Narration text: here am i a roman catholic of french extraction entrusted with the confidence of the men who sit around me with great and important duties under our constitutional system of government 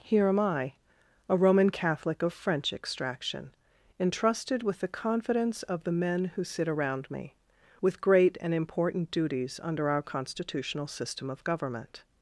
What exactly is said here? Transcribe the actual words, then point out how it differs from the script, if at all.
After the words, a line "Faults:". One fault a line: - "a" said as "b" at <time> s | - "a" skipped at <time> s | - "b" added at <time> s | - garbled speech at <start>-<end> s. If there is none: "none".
here am i a roman catholic of french extraction entrusted with the confidence of the men who sit around me with great and important duties under our constitutional system of government
Faults:
none